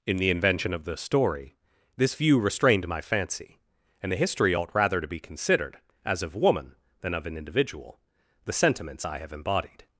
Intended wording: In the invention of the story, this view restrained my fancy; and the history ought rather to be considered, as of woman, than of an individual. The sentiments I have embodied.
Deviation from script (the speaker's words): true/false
false